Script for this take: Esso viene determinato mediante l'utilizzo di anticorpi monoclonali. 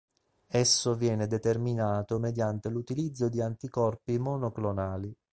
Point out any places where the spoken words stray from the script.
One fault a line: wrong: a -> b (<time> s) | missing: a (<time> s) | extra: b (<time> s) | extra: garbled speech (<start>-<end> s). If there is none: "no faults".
no faults